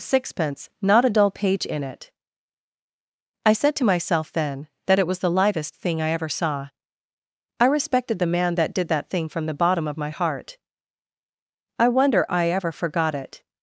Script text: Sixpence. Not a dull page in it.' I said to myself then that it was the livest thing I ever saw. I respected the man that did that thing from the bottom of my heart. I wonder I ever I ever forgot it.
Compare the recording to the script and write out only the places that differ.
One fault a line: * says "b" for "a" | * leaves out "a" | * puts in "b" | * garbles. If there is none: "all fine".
* leaves out "I ever"